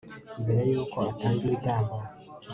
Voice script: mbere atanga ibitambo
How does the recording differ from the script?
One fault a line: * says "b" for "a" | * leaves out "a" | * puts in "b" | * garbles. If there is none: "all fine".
* puts in "y'uko"